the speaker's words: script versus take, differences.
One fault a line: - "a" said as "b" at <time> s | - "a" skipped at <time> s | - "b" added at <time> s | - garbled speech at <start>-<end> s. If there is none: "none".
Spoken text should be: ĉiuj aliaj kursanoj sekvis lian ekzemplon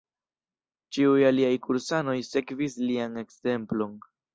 none